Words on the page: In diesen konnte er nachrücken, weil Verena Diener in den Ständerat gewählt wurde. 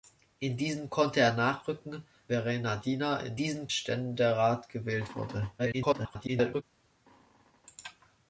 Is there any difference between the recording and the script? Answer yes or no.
yes